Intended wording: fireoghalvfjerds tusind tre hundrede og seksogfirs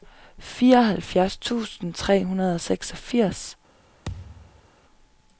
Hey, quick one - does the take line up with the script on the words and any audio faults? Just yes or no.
no